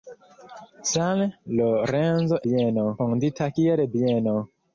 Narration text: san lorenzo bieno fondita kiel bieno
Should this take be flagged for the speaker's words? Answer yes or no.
no